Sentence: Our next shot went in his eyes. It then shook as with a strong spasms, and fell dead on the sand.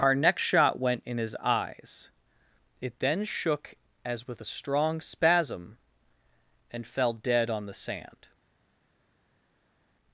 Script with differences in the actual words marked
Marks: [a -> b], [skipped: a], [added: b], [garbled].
Our next shot went in his eyes. It then shook as with a strong [spasms, -> spasm] and fell dead on the sand.